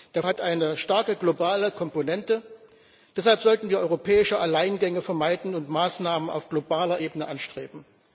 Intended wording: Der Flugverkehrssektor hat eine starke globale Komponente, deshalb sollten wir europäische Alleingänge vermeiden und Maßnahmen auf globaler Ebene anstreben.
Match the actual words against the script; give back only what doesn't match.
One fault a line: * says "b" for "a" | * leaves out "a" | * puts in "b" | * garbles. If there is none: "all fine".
* leaves out "Flugverkehrssektor"